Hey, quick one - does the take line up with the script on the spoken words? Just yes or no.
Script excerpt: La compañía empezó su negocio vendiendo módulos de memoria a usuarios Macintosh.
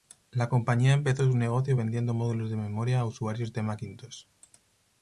no